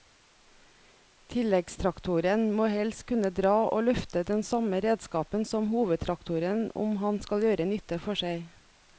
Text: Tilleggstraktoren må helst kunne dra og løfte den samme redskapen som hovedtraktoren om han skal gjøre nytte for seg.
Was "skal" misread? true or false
false